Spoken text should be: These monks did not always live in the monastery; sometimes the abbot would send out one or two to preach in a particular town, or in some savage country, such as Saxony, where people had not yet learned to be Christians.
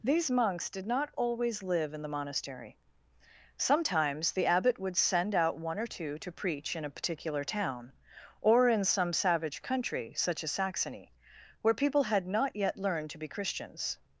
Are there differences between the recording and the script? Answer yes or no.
no